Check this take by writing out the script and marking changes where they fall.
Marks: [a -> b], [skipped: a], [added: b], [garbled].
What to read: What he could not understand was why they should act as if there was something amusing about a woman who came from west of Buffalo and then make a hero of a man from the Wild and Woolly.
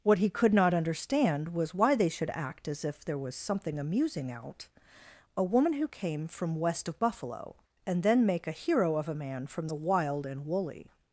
What he could not understand was why they should act as if there was something amusing [about -> out] a woman who came from west of Buffalo and then make a hero of a man from the Wild and Woolly.